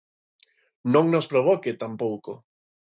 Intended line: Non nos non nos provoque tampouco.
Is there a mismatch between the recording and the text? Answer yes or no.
yes